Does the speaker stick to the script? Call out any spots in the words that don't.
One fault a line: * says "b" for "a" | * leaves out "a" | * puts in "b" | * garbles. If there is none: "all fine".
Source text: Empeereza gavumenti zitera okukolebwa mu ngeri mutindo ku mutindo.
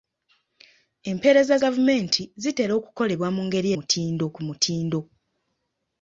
all fine